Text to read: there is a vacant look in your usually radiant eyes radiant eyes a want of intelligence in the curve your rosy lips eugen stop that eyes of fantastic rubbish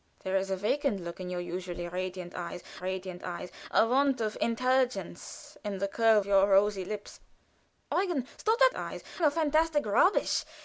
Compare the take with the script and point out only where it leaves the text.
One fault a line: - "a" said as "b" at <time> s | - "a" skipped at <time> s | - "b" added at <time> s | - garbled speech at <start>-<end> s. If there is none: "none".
none